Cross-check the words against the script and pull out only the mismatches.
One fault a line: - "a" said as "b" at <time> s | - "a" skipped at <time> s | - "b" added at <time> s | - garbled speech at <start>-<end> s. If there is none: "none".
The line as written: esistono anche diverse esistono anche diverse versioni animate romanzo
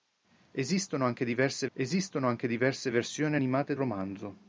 none